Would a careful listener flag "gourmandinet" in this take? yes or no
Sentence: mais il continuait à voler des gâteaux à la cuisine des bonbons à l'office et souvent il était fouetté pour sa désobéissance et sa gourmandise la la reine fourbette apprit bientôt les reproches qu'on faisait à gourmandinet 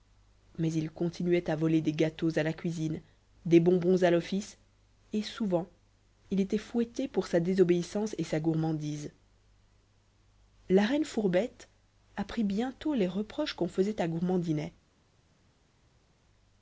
no